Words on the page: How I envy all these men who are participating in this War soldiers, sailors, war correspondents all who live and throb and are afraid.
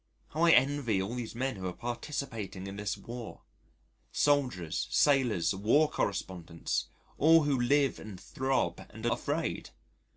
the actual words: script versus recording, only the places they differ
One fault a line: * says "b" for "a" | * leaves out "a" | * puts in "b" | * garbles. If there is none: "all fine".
all fine